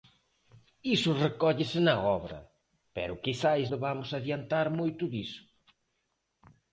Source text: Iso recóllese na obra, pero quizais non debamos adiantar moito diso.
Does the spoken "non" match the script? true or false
false